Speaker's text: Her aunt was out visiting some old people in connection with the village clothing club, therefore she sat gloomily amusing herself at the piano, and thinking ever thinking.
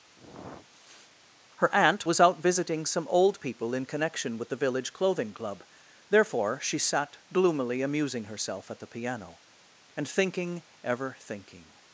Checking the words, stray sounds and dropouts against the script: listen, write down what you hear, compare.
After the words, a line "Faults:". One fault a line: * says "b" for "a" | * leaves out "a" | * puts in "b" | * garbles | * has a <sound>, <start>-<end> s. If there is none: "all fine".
Her aunt was out visiting some old people in connection with the village clothing club, therefore she sat gloomily amusing herself at the piano, and thinking ever thinking.
Faults:
* has a sniff, 0.1-1.1 s